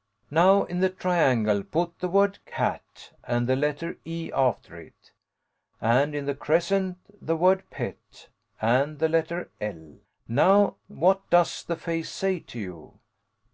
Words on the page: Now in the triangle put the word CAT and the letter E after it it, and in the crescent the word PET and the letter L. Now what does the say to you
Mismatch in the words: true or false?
true